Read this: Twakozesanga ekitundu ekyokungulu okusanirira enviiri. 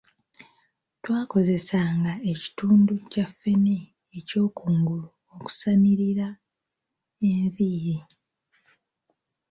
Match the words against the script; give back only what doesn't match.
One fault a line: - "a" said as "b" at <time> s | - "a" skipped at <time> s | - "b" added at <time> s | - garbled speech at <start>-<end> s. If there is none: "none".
- "kya ffene" added at 3.1 s